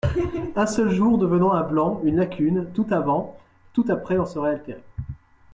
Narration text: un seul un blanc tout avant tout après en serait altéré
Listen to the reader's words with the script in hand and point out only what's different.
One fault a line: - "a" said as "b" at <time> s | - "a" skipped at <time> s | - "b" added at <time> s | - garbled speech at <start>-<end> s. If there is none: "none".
- "jour devenant" added at 0.9 s
- "une lacune" added at 2.0 s